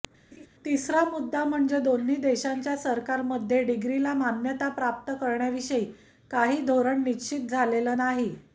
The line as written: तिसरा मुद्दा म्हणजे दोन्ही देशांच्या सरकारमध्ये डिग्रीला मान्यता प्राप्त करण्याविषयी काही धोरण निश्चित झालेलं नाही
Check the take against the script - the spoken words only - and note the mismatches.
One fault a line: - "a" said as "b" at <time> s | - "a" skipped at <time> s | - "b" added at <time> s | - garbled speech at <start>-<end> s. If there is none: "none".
none